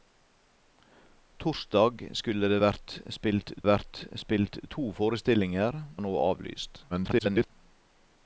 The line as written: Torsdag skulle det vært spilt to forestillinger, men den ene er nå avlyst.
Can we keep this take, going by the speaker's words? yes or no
no